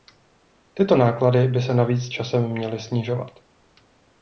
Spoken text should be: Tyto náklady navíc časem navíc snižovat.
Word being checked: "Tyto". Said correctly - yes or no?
yes